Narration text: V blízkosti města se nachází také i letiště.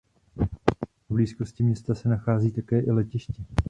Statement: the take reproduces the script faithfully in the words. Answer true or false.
true